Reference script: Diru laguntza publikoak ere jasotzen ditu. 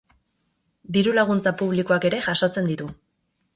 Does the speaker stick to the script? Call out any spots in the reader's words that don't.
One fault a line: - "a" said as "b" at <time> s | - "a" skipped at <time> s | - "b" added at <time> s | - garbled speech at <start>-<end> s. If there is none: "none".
none